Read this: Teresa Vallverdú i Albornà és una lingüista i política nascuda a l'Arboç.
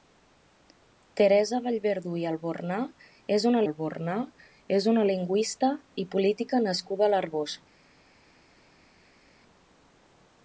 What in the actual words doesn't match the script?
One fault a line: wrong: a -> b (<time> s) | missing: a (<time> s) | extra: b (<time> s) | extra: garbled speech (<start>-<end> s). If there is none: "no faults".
extra: Albornà és una (3.7 s)